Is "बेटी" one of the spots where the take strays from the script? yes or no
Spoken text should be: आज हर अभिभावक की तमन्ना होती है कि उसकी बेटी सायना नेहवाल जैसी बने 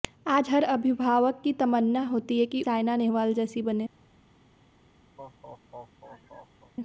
yes